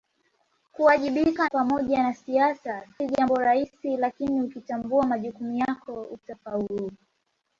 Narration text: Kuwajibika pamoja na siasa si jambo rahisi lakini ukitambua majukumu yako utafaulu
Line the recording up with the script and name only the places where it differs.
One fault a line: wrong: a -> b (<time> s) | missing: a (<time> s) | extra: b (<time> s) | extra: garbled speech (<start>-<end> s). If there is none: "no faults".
no faults